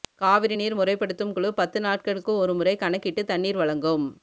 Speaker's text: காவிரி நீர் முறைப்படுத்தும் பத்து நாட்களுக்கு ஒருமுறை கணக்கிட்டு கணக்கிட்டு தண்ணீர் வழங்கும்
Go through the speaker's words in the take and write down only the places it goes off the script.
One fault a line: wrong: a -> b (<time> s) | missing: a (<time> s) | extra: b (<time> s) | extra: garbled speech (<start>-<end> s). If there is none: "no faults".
extra: குழு (1.3 s)
missing: கணக்கிட்டு (3.2 s)